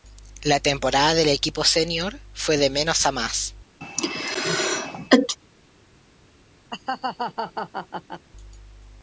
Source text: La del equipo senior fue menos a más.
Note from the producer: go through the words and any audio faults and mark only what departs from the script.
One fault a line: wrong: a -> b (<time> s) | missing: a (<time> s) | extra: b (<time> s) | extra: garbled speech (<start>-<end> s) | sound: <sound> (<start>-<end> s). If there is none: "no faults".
extra: temporada (0.6 s)
extra: de (2.6 s)
sound: sneeze (3.8-5.4 s)
sound: laugh (6.7-8.3 s)